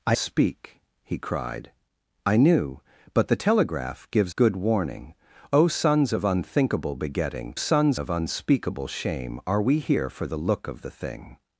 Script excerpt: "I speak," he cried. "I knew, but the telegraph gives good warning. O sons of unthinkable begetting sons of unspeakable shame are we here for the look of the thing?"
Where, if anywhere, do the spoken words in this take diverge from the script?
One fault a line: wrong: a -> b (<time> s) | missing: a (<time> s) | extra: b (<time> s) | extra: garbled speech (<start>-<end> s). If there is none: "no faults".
no faults